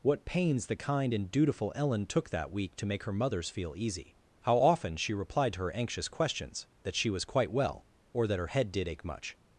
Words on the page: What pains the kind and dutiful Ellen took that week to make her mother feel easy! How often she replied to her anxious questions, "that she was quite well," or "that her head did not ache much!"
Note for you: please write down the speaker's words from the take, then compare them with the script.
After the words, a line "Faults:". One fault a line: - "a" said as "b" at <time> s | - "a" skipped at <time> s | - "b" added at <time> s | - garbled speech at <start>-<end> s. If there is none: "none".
What pains the kind and dutiful Ellen took that week to make her mothers feel easy! How often she replied to her anxious questions, "that she was quite well," or "that her head did ache much!"
Faults:
- "mother" said as "mothers" at 3.1 s
- "not" skipped at 8.9 s